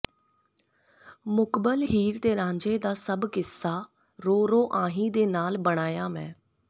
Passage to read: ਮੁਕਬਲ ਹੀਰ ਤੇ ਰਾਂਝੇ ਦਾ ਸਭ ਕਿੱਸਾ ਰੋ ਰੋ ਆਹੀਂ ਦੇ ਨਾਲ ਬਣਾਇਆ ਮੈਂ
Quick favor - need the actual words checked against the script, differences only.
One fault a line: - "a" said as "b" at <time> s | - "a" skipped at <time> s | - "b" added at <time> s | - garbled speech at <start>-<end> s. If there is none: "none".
none